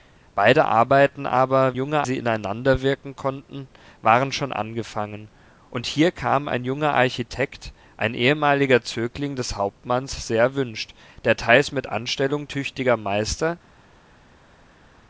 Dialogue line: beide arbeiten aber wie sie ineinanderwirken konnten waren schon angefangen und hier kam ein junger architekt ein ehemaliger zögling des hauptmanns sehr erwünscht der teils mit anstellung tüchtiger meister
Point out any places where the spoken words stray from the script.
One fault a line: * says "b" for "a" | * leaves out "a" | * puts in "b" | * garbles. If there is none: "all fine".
* says "junger" for "wie"